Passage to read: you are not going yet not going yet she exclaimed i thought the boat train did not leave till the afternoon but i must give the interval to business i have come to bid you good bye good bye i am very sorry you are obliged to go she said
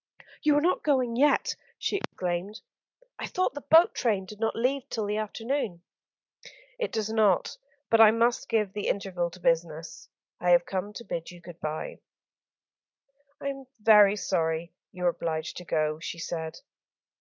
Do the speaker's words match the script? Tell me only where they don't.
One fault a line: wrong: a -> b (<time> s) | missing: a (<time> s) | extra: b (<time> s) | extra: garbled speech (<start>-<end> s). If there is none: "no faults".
missing: not going yet (1.6 s)
extra: it does not (6.8 s)
missing: good bye (12.0 s)